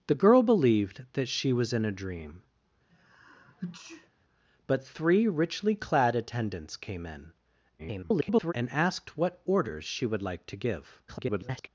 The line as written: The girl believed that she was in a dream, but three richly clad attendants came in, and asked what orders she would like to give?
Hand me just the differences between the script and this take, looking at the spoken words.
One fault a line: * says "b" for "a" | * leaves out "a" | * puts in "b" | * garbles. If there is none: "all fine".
* garbles
* garbles